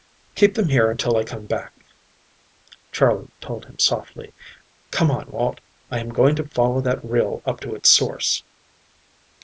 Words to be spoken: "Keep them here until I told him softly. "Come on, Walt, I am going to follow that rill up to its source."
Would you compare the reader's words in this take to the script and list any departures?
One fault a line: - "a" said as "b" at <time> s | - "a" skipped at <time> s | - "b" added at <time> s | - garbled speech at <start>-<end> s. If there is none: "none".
- "come back Charley" added at 1.2 s